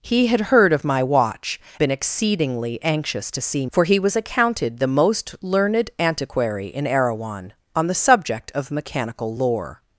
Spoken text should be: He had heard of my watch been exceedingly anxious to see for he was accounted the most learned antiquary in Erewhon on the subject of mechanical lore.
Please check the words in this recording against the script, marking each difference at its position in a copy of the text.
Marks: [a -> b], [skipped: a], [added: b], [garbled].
He had heard of my watch been exceedingly anxious to see for he was accounted the most learned antiquary in Erewhon on the subject of mechanical lore.